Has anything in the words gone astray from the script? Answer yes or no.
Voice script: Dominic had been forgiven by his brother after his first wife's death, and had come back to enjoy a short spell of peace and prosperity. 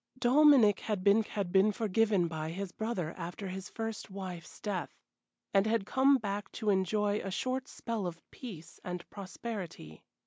yes